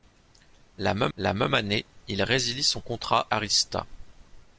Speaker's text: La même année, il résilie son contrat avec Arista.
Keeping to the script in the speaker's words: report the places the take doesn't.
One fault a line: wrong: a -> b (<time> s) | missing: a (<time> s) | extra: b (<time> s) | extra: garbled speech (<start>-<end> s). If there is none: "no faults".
extra: la même (1.2 s)
missing: avec (3.3 s)